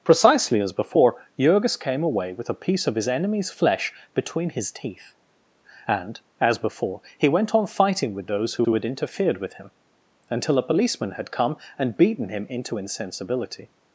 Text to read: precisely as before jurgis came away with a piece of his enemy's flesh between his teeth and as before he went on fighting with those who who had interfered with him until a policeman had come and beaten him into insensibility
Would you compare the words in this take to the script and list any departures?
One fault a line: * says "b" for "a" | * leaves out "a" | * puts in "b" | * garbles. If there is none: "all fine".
all fine